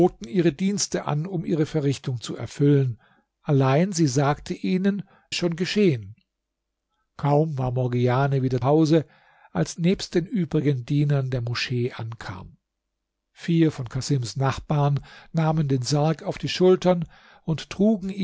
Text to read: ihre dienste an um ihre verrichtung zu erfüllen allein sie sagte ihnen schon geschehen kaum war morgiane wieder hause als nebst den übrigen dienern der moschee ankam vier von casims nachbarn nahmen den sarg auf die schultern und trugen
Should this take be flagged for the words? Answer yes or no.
no